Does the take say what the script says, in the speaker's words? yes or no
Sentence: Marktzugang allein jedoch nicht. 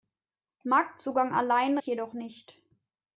yes